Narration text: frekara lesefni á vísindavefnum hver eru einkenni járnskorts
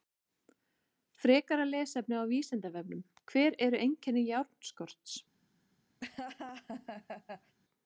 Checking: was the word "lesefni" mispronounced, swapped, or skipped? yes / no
no